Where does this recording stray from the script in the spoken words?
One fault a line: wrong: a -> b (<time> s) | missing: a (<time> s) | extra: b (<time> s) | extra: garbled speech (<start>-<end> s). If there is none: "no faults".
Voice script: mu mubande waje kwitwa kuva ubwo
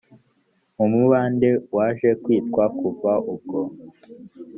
no faults